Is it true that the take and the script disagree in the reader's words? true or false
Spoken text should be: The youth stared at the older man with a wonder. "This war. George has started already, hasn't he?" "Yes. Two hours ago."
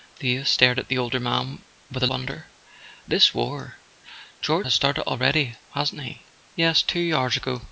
false